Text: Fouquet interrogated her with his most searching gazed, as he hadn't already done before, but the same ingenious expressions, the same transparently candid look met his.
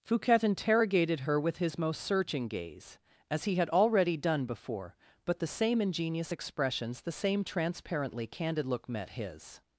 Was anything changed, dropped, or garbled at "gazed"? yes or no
yes